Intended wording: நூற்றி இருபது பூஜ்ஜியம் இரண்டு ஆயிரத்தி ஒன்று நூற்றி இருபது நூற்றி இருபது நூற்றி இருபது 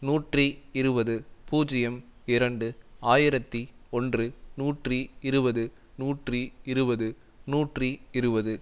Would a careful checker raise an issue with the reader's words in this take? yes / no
no